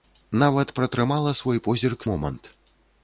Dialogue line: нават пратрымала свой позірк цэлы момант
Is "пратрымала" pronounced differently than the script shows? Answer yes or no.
no